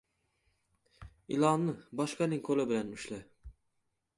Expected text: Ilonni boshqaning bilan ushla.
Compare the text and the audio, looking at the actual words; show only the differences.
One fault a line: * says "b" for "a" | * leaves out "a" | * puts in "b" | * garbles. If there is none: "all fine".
* puts in "qo‘li"